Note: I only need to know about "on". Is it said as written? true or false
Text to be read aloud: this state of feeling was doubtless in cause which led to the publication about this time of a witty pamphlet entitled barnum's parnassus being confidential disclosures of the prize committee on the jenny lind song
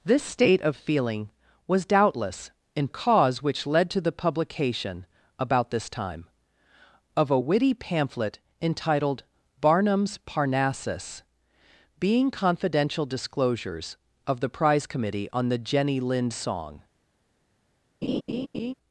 true